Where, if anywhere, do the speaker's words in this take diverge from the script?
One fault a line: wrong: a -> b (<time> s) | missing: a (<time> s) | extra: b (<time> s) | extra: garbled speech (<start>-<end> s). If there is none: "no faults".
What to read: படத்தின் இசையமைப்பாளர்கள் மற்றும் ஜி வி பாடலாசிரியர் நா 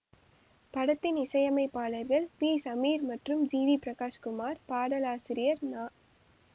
extra: பி சமீர் (2.4 s)
extra: பிரகாஷ் குமார் (3.8 s)